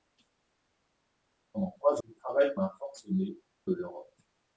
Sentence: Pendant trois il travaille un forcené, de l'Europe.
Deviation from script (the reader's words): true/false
false